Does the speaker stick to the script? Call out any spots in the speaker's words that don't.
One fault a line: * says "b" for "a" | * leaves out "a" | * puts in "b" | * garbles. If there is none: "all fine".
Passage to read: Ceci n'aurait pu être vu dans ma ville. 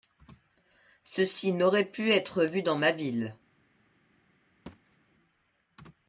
all fine